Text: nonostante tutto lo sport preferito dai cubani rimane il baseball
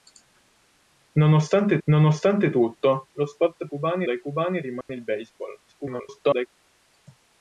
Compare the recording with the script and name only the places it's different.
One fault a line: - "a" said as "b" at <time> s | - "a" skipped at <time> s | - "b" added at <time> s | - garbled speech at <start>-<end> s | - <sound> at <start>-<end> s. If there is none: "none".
- "nonostante" added at 1.8 s
- "preferito" said as "cubani" at 3.6 s
- dropout at 4.8-4.9 s
- garbled speech at 5.7-6.5 s